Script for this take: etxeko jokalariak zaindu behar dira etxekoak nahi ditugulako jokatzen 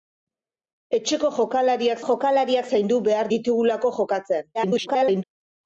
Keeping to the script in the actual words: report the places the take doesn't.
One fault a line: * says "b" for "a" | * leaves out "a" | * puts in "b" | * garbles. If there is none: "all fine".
* puts in "jokalariak"
* leaves out "dira etxekoak nahi"
* garbles